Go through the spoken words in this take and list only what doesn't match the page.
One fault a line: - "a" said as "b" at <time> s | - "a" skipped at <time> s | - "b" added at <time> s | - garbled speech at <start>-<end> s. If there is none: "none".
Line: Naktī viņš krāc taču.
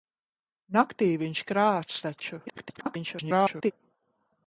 - garbled speech at 2.5-3.7 s